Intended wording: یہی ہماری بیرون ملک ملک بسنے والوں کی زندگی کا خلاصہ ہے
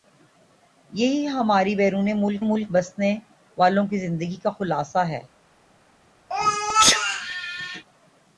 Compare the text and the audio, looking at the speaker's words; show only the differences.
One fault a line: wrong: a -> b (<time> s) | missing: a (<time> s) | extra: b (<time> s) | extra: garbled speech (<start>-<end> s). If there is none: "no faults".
no faults